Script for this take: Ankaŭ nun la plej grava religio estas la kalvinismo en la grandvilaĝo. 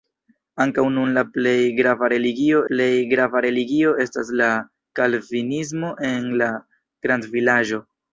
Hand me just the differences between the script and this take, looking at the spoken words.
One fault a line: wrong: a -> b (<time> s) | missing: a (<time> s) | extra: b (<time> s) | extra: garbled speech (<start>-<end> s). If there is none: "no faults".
extra: plej grava religio (2.7 s)